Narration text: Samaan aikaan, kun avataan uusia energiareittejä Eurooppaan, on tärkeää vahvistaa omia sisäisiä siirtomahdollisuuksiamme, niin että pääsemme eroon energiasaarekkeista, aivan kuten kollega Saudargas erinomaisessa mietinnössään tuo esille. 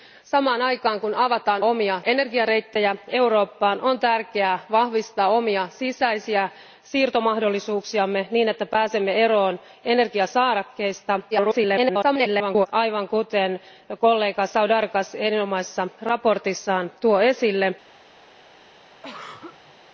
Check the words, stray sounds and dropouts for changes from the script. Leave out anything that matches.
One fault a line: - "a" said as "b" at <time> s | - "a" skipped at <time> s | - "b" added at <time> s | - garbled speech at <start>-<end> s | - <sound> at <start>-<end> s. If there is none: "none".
- "uusia" said as "omia" at 1.6 s
- garbled speech at 11.3-12.7 s
- throat clearing at 19.0-19.7 s